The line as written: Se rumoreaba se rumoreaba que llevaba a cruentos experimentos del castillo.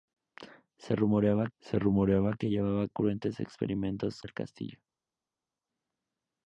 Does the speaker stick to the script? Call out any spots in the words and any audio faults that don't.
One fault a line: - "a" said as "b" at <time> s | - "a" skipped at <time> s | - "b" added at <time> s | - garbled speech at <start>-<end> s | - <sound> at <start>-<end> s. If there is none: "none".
none